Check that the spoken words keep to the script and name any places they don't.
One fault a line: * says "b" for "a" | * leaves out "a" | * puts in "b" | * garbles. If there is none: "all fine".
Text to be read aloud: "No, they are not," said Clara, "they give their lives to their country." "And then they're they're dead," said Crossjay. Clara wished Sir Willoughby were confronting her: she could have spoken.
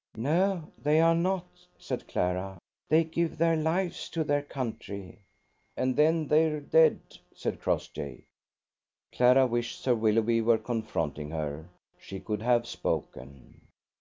* leaves out "they're"